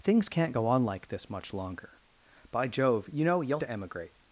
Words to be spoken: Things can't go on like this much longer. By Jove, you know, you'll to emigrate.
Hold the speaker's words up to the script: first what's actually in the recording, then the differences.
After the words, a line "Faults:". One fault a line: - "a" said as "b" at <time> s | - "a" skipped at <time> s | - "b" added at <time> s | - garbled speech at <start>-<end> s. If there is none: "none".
Things can't go on like this much longer. By Jove, you know, you'll to emigrate.
Faults:
none